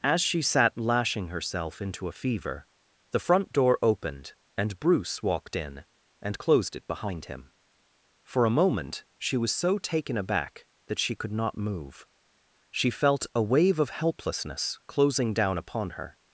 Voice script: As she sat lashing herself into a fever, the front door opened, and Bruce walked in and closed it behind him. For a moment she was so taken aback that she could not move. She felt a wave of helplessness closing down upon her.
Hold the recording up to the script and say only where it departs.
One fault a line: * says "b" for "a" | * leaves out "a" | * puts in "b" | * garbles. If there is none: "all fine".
all fine